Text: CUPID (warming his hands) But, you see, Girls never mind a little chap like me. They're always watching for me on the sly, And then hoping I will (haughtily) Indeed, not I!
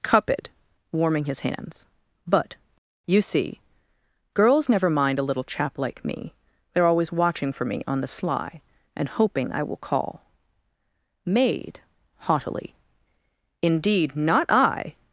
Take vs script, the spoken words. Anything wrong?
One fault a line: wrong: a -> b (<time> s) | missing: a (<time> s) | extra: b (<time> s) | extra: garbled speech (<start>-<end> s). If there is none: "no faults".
missing: then (9.1 s)
extra: call MAID (9.8 s)